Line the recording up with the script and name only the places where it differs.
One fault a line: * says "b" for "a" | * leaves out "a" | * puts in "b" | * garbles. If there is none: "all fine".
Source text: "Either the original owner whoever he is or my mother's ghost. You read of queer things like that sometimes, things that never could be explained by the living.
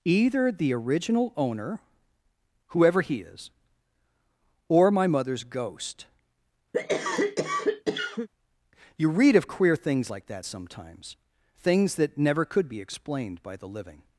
all fine